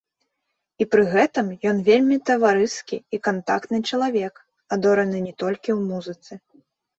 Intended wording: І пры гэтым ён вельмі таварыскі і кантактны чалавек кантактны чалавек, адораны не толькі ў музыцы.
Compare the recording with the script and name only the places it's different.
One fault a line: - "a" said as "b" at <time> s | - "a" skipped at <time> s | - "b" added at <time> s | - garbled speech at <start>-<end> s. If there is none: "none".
- "кантактны чалавек" skipped at 4.3 s